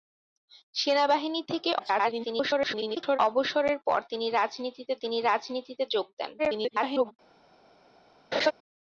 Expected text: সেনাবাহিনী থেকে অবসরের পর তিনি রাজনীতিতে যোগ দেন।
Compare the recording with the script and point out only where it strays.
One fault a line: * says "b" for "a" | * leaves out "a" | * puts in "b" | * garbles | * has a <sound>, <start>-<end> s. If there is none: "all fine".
* garbles
* puts in "তিনি রাজনীতিতে"
* garbles
* has a laugh, 8.3-8.5 s